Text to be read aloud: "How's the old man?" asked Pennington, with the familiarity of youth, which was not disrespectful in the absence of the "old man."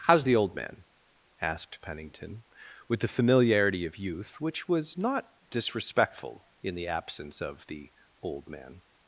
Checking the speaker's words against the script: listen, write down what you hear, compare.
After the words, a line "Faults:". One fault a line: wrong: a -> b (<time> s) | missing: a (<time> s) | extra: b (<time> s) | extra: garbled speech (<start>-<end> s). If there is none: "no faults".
"How's the old man?" asked Pennington, with the familiarity of youth, which was not disrespectful in the absence of the "old man."
Faults:
no faults